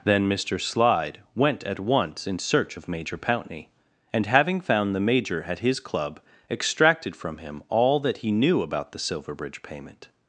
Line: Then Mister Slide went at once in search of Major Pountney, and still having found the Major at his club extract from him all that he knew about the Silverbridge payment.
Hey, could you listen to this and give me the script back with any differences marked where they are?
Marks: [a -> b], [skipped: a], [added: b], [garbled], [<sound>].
Then Mister Slide went at once in search of Major Pountney, and [skipped: still] having found the Major at his club [extract -> extracted] from him all that he knew about the Silverbridge payment.